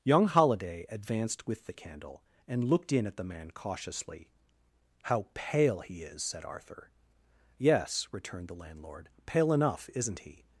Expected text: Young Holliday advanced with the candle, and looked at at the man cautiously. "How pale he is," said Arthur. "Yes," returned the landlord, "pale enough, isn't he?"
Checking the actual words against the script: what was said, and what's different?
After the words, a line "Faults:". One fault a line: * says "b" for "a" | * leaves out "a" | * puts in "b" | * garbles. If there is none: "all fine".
Young Holliday advanced with the candle, and looked in at the man cautiously. "How pale he is," said Arthur. "Yes," returned the landlord, "pale enough, isn't he?"
Faults:
* says "in" for "at"